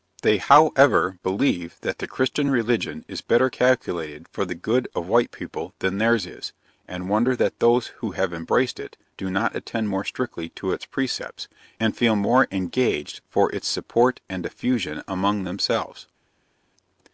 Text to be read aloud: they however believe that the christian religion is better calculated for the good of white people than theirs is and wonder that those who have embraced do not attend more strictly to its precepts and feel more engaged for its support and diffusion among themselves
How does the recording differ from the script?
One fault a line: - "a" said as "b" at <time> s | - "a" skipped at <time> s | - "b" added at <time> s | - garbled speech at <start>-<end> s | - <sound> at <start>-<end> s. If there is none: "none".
- "it" added at 8.8 s